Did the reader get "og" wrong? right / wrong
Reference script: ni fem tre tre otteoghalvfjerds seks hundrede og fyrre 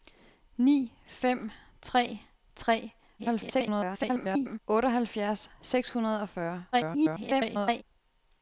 right